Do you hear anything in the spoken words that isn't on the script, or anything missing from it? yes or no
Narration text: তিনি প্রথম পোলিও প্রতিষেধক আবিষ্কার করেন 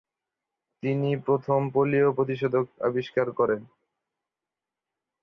no